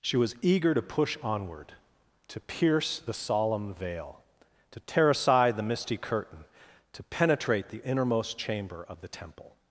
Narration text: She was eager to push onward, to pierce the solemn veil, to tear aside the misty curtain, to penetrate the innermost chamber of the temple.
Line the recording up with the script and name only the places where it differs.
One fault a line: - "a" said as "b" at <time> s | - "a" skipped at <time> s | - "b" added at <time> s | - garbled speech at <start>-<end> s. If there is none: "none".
none